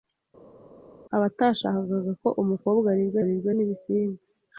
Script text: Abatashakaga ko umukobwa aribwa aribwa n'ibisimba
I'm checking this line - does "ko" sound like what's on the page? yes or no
yes